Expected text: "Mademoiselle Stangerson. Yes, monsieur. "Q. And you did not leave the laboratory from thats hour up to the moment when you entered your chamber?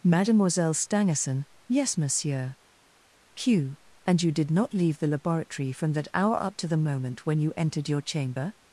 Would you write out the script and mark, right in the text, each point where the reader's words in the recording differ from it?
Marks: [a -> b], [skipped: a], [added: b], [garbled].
"Mademoiselle Stangerson. Yes, monsieur. "Q. And you did not leave the laboratory from [thats -> that] hour up to the moment when you entered your chamber?